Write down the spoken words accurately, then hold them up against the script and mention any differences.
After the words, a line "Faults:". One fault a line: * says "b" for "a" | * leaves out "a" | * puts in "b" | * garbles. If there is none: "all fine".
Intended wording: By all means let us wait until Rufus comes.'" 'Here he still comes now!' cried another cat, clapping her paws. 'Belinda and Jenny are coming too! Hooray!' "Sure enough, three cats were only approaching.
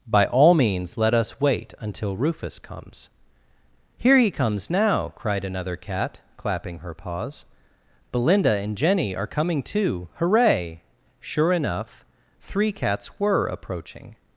By all means let us wait until Rufus comes.'" 'Here he comes now!' cried another cat, clapping her paws. 'Belinda and Jenny are coming too! Hooray!' "Sure enough, three cats were approaching.
Faults:
* leaves out "still"
* leaves out "only"